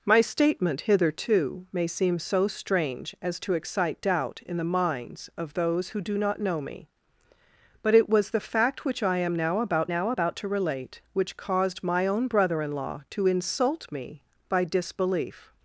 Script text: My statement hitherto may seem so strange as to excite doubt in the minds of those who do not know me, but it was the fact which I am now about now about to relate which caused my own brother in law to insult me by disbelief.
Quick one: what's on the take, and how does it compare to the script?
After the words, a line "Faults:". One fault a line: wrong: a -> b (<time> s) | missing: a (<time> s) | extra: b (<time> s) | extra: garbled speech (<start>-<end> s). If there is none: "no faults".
My statement hitherto may seem so strange as to excite doubt in the minds of those who do not know me, but it was the fact which I am now about now about to relate which caused my own brother in law to insult me by disbelief.
Faults:
no faults